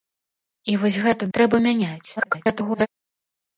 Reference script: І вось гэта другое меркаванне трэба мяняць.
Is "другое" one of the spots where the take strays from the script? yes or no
yes